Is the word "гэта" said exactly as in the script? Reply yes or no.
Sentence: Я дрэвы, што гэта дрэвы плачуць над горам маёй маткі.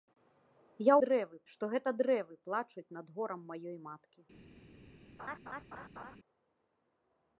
yes